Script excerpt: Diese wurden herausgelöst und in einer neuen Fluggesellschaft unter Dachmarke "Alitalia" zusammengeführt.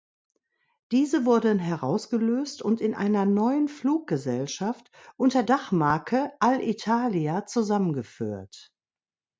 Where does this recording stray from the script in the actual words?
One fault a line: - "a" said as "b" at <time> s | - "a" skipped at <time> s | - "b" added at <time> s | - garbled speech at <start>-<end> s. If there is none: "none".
none